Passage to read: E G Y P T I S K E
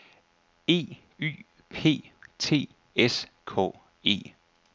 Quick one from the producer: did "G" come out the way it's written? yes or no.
no